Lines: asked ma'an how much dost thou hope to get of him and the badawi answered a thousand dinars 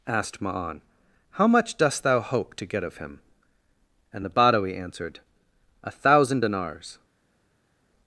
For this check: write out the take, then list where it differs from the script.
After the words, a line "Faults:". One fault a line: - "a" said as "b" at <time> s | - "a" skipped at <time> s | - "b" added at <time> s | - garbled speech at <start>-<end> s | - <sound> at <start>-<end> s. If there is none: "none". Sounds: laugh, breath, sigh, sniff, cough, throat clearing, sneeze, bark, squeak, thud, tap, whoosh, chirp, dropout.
asked ma'an how much dost thou hope to get of him and the badawi answered a thousand dinars
Faults:
none